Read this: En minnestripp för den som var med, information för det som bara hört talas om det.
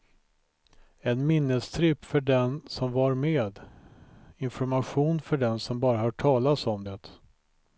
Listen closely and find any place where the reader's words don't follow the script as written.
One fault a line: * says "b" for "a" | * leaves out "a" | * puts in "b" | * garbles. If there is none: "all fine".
* says "den" for "det"